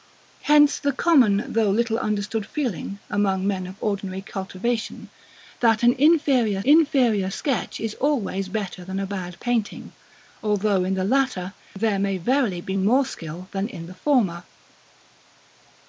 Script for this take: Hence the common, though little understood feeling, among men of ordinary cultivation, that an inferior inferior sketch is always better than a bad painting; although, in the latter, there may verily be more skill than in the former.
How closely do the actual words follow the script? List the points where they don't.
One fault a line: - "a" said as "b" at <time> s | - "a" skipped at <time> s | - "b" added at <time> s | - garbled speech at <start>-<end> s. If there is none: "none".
none